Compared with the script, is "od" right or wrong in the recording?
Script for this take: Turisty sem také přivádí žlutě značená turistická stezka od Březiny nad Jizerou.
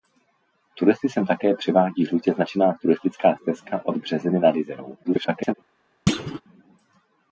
right